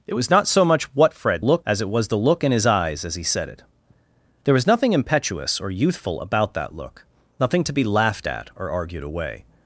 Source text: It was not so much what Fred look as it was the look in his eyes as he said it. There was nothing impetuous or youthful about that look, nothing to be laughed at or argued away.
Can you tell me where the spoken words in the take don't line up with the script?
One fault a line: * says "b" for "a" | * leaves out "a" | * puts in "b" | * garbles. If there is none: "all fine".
all fine